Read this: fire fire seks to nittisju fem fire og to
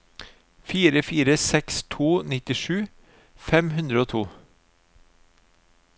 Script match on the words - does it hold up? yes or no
no